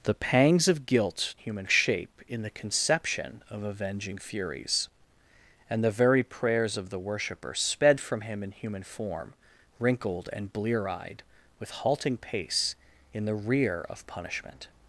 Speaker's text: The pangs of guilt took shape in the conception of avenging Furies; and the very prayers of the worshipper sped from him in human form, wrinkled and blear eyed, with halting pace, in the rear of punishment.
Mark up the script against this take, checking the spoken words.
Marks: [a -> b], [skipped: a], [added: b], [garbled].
The pangs of guilt [took -> human] shape in the conception of avenging Furies; and the very prayers of the worshipper sped from him in human form, wrinkled and blear eyed, with halting pace, in the rear of punishment.